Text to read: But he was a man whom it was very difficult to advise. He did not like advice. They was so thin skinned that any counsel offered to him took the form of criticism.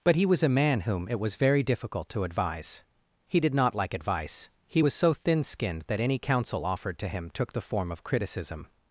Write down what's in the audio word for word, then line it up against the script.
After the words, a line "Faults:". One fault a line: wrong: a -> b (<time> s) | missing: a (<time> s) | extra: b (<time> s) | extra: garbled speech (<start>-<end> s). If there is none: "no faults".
But he was a man whom it was very difficult to advise. He did not like advice. He was so thin skinned that any counsel offered to him took the form of criticism.
Faults:
wrong: They -> He (4.7 s)